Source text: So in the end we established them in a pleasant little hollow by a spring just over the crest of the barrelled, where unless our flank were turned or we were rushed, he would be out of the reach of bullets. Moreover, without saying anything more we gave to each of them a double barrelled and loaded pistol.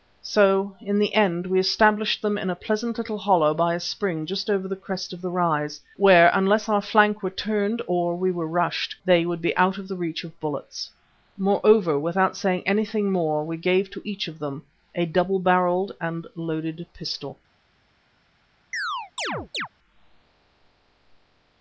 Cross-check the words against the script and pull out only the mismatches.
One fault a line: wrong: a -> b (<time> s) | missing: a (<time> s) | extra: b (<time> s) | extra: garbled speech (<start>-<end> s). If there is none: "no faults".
wrong: barrelled -> rise (5.3 s)
wrong: he -> they (9.1 s)